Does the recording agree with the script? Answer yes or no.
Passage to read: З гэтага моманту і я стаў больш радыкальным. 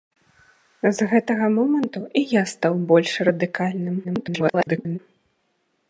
no